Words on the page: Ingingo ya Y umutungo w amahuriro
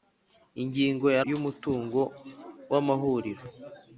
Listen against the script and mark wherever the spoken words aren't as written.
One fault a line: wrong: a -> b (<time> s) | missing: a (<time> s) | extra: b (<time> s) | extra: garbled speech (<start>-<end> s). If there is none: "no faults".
no faults